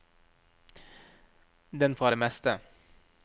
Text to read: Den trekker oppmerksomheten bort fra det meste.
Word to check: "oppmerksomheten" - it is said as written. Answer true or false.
false